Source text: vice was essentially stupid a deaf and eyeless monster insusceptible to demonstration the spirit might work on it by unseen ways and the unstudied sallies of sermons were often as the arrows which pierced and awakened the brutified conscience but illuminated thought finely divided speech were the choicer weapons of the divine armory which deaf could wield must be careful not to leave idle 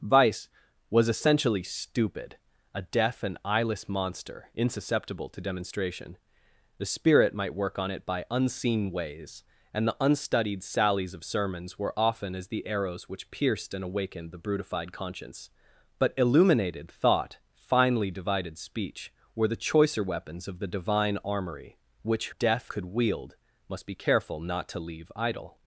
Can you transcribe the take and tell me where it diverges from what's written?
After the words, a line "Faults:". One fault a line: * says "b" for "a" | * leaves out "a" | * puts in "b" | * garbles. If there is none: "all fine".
vice was essentially stupid a deaf and eyeless monster insusceptible to demonstration the spirit might work on it by unseen ways and the unstudied sallies of sermons were often as the arrows which pierced and awakened the brutified conscience but illuminated thought finely divided speech were the choicer weapons of the divine armory which deaf could wield must be careful not to leave idle
Faults:
all fine